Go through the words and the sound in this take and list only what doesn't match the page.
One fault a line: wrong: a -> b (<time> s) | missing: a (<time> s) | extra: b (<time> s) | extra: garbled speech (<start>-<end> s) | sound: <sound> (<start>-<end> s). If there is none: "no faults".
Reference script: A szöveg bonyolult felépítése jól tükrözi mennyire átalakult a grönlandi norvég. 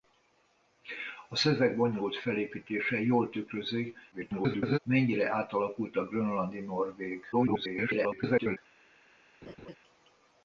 extra: garbled speech (4.1-4.8 s)
extra: garbled speech (7.3-8.6 s)
sound: laugh (9.4-9.8 s)